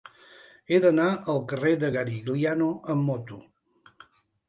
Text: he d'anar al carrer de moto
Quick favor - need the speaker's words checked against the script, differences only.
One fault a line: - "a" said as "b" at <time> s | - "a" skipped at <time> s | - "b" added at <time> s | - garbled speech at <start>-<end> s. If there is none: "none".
- "garigliano amb" added at 1.9 s